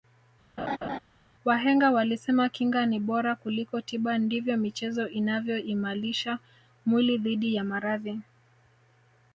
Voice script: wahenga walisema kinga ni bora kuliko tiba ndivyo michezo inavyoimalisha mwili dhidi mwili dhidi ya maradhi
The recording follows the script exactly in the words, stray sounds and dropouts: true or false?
false